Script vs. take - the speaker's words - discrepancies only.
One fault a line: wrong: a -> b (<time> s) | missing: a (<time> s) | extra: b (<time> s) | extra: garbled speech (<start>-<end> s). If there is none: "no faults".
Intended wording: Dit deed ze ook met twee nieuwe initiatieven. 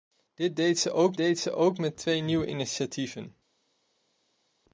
extra: deed ze ook (1.2 s)